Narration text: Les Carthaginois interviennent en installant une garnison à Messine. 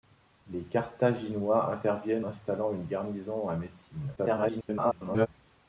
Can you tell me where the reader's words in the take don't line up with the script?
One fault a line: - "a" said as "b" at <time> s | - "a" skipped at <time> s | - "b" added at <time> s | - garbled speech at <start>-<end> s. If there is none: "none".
- "en" skipped at 2.2 s
- garbled speech at 4.2-5.3 s